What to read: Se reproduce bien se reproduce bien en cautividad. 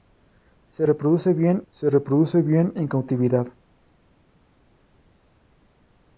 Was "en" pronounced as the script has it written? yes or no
yes